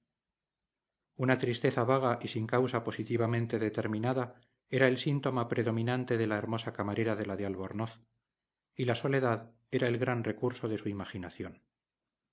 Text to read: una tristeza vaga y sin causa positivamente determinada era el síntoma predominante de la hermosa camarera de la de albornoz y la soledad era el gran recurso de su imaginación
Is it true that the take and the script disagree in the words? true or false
false